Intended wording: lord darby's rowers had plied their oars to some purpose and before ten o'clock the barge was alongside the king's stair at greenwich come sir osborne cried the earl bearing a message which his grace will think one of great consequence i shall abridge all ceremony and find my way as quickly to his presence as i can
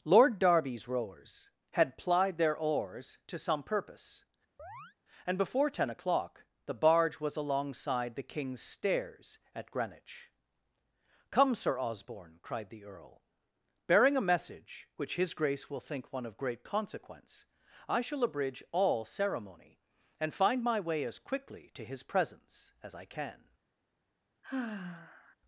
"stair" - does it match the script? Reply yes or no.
no